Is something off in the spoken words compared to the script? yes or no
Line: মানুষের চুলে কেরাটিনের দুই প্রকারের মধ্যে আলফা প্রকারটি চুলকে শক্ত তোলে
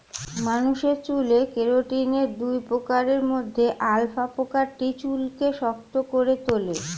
yes